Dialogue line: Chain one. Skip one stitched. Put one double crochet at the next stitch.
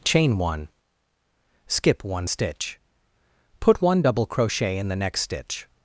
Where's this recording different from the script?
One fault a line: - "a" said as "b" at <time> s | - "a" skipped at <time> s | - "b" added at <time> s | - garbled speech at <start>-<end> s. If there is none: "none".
- "stitched" said as "stitch" at 2.2 s
- "at" said as "in" at 4.8 s